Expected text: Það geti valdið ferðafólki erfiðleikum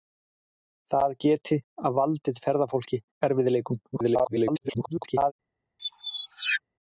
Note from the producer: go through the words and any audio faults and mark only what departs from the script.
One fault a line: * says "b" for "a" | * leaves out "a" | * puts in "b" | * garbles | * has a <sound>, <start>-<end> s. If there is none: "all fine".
* garbles
* has a squeak, 5.8-6.6 s